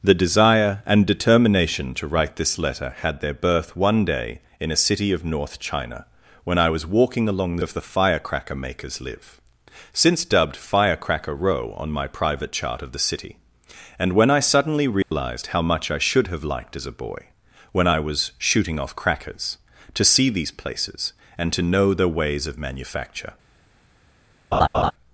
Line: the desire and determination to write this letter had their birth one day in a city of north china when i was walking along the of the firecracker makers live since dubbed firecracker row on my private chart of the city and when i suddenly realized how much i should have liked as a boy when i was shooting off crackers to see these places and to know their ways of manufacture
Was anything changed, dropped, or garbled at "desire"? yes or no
no